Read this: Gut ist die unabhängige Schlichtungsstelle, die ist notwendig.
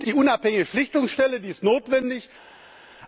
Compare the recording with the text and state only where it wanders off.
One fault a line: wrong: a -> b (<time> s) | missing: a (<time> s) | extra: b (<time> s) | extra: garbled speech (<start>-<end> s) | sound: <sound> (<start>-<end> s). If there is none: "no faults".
missing: ist (0.1 s)